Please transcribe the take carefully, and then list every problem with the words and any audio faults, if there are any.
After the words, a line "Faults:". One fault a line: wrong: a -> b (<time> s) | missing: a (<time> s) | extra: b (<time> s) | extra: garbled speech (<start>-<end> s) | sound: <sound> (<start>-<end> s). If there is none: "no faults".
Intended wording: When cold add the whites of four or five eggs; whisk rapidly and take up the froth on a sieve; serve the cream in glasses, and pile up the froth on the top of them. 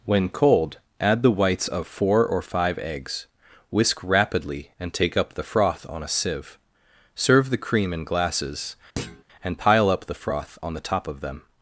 When cold add the whites of four or five eggs; whisk rapidly and take up the froth on a sieve; serve the cream in glasses, and pile up the froth on the top of them.
Faults:
sound: thud (9.0-9.2 s)